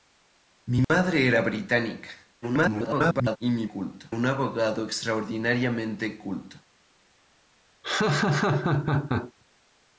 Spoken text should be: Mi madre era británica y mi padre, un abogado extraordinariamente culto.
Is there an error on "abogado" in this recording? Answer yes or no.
no